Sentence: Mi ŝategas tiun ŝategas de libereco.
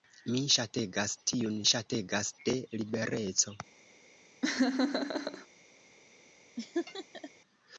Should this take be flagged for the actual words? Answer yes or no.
no